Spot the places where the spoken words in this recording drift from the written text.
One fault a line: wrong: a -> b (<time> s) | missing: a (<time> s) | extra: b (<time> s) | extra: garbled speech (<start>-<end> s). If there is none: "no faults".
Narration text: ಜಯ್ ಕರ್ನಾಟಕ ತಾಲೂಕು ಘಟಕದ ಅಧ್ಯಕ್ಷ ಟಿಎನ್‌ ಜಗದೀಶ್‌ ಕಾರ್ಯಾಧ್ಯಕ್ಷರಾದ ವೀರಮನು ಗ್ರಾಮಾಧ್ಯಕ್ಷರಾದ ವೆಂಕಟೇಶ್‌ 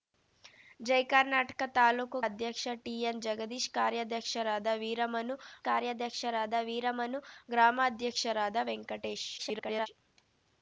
missing: ಘಟಕದ (2.2 s)
extra: ಕಾರ್ಯಾಧ್ಯಕ್ಷರಾದ ವೀರಮನು (5.7 s)
extra: garbled speech (9.4-9.9 s)